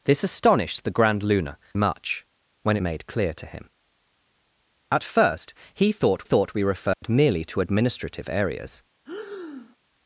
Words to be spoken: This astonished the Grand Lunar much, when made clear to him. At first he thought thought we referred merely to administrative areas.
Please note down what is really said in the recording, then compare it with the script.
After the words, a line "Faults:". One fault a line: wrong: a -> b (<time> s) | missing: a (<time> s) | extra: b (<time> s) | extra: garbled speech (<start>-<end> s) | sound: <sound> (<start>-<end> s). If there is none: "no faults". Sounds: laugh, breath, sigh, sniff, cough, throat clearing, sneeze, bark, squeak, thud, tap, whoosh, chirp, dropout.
This astonished the Grand Lunar much, when made clear to him. At first he thought thought we referred merely to administrative areas.
Faults:
sound: dropout (6.9-7.0 s)
sound: breath (9.0-9.8 s)